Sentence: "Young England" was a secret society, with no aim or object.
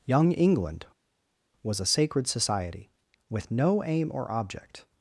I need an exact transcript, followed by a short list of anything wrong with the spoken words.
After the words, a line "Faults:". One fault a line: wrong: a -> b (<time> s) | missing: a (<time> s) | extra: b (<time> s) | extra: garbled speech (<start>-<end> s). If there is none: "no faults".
"Young England" was a sacred society, with no aim or object.
Faults:
wrong: secret -> sacred (1.9 s)